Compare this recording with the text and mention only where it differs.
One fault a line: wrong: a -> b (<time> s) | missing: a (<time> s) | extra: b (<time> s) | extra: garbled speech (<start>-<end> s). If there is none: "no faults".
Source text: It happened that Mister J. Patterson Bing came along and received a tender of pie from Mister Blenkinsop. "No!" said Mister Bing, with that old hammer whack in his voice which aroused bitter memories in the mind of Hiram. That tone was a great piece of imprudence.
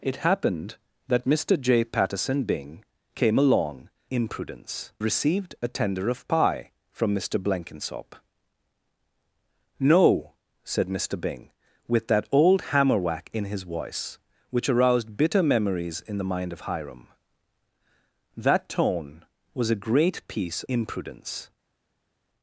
wrong: and -> imprudence (4.1 s)
missing: of (20.6 s)